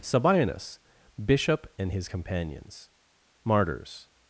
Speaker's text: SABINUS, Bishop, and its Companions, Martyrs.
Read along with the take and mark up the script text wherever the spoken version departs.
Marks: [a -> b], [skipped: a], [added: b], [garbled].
SABINUS, Bishop, and [its -> his] Companions, Martyrs.